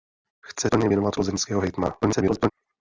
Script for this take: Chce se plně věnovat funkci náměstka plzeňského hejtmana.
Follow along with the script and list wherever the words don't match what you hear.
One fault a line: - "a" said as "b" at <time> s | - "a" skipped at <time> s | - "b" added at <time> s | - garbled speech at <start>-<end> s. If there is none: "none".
- "se" skipped at 0.7 s
- "funkci náměstka" skipped at 1.2 s
- garbled speech at 2.0-2.5 s